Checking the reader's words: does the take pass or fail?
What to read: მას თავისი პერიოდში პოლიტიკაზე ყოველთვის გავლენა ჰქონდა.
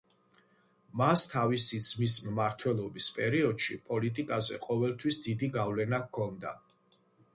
fail